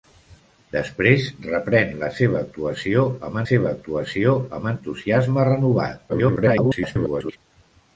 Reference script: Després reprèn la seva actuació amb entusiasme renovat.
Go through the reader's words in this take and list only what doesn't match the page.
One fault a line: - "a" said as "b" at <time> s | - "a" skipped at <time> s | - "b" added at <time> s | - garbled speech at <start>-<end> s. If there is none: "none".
- "seva actuació amb" added at 3.5 s
- garbled speech at 6.1-7.4 s